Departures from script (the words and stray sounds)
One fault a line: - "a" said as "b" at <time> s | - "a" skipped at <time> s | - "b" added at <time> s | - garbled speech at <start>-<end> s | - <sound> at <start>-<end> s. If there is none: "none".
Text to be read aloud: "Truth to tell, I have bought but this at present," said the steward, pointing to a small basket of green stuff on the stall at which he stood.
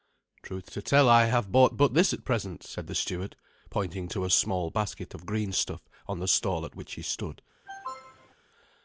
- cough at 7.7-8.3 s